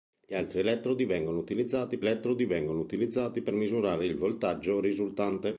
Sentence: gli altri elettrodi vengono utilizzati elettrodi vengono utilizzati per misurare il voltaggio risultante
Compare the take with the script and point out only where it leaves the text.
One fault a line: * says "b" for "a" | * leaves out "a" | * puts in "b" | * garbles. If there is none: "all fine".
all fine